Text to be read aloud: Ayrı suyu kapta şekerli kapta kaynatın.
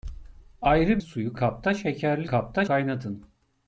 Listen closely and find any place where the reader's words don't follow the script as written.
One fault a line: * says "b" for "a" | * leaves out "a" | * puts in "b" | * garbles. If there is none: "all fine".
all fine